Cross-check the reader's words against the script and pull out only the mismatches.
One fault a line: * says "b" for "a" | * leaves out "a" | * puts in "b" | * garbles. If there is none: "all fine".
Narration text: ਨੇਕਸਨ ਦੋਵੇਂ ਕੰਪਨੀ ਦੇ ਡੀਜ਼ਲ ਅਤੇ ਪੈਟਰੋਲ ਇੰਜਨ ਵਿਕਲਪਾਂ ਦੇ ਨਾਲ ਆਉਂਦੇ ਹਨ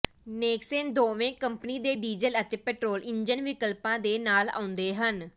all fine